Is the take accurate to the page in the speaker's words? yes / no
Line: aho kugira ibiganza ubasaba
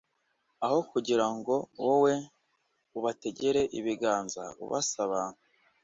no